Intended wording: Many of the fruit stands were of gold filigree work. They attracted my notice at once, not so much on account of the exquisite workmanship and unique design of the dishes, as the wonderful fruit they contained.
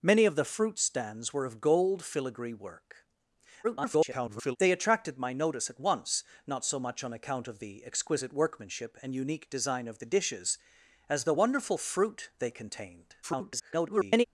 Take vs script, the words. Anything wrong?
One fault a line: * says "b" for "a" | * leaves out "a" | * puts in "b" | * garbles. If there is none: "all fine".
* garbles
* garbles